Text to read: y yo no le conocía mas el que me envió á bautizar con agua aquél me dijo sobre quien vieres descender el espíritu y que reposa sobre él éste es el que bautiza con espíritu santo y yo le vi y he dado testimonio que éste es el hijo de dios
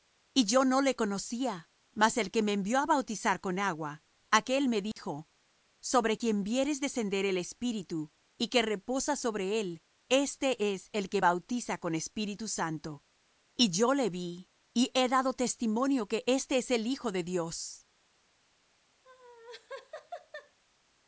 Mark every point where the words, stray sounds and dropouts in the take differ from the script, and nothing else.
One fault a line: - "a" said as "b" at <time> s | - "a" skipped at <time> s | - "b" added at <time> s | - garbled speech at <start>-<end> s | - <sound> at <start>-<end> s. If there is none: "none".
- dropout at 4.9-5.0 s
- laugh at 19.0-20.6 s